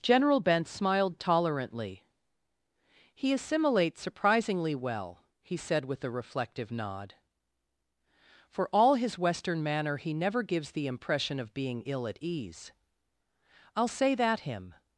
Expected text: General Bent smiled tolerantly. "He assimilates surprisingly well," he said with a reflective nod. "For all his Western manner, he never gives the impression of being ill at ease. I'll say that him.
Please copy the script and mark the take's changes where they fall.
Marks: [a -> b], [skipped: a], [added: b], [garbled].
General Bent smiled tolerantly. "He assimilates surprisingly well," he said with a reflective nod. "For all his Western manner, he never gives the impression of being ill at ease. I'll say that him.